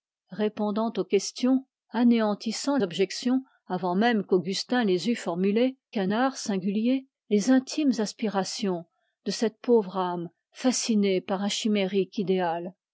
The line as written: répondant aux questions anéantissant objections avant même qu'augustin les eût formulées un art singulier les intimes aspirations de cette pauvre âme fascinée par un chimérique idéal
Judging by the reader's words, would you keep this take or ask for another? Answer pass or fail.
pass